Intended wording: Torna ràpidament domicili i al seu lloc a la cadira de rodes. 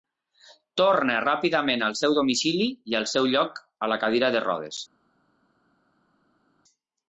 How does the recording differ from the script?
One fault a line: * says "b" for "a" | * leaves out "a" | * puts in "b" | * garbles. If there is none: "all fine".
* puts in "al seu"